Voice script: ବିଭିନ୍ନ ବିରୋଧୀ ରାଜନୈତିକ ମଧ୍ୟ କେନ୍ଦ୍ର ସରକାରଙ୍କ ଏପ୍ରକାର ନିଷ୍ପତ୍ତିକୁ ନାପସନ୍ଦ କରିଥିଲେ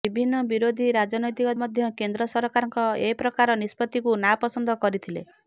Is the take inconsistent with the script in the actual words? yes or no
no